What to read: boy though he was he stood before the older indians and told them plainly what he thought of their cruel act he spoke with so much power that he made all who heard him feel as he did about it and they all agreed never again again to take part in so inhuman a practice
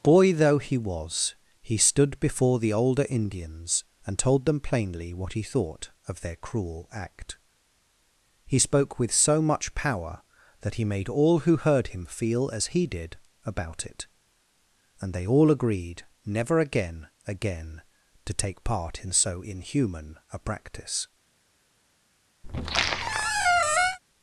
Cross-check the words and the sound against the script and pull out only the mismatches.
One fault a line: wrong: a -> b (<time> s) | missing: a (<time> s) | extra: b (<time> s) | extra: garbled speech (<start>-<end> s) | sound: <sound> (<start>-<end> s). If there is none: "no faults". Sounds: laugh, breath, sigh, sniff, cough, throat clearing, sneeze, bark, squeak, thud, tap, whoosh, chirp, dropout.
sound: squeak (22.4-24.0 s)